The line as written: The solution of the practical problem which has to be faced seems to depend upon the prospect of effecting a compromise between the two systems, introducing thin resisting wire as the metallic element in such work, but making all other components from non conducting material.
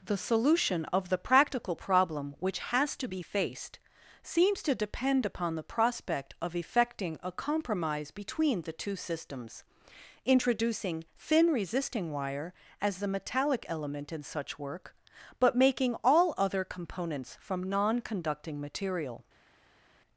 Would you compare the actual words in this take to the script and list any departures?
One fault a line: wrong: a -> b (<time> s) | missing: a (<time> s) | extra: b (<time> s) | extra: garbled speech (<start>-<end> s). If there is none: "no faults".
no faults